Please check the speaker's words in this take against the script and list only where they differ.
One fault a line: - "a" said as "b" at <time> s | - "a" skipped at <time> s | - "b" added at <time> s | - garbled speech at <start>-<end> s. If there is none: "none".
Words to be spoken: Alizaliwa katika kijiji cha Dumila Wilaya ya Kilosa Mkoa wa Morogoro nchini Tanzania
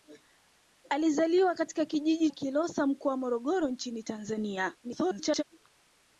- "cha Dumila Wilaya" skipped at 2.3 s
- garbled speech at 4.8-5.4 s